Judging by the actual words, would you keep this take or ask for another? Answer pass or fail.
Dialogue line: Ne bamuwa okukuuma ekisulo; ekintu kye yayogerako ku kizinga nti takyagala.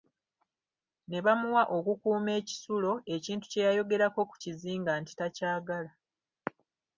pass